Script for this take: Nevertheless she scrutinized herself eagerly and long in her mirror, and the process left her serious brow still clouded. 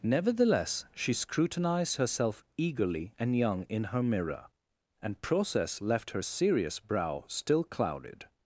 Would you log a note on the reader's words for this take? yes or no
yes